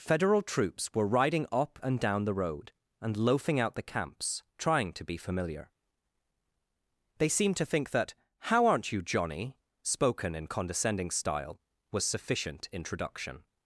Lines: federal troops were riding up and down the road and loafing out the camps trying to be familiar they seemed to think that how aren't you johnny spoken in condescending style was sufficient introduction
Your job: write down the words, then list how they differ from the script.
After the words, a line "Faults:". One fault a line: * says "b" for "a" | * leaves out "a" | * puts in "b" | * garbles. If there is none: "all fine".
federal troops were riding up and down the road and loafing out the camps trying to be familiar they seemed to think that how aren't you johnny spoken in condescending style was sufficient introduction
Faults:
all fine